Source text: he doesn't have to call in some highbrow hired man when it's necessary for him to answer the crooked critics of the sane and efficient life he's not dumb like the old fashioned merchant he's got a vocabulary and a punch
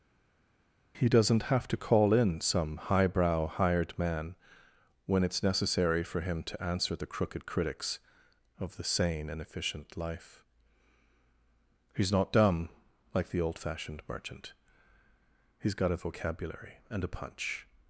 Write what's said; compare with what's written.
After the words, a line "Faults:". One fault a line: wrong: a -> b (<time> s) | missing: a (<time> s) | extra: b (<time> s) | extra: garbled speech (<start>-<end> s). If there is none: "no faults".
he doesn't have to call in some highbrow hired man when it's necessary for him to answer the crooked critics of the sane and efficient life he's not dumb like the old fashioned merchant he's got a vocabulary and a punch
Faults:
no faults